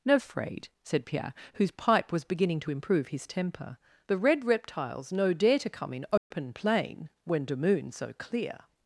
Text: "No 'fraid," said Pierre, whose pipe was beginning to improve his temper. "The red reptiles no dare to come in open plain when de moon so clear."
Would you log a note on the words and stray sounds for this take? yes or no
yes